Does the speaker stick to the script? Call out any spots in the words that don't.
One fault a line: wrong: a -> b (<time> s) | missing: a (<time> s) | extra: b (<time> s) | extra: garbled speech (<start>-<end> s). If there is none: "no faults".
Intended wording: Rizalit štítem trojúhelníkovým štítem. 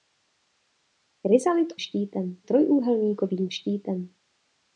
no faults